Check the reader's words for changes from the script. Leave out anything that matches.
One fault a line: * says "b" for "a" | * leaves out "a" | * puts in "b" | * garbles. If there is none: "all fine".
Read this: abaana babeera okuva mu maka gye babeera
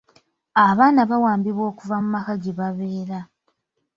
* says "bawambibwa" for "babeera"